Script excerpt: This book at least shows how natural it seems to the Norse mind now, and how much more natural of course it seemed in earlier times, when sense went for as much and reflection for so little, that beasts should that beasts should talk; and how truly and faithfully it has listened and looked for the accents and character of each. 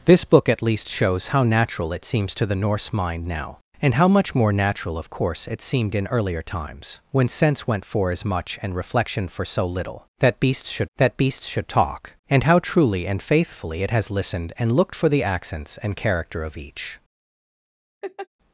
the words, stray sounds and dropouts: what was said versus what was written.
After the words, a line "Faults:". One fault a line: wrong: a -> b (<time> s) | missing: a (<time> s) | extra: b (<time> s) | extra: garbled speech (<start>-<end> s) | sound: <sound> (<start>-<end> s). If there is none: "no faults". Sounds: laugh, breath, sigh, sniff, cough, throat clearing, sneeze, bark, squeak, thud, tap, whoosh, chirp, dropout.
This book at least shows how natural it seems to the Norse mind now, and how much more natural of course it seemed in earlier times, when sense went for as much and reflection for so little, that beasts should that beasts should talk; and how truly and faithfully it has listened and looked for the accents and character of each.
Faults:
sound: laugh (18.0-18.3 s)